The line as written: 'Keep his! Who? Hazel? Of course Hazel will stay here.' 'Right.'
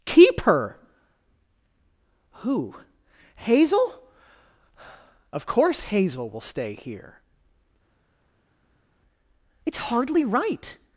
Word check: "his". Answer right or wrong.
wrong